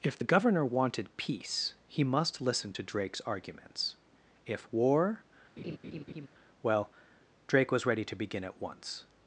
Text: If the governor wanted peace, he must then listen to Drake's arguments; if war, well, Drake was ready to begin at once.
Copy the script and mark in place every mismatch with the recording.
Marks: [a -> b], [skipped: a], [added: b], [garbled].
If the governor wanted peace, he must [skipped: then] listen to Drake's arguments; if war, well, Drake was ready to begin at once.